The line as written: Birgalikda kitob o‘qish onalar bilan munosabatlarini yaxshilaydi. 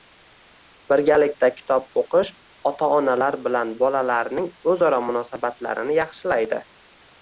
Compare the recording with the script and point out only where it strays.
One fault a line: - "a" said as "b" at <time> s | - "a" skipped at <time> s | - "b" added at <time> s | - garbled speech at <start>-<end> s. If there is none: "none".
- "ota" added at 2.7 s
- "bolalarning o‘zaro" added at 3.8 s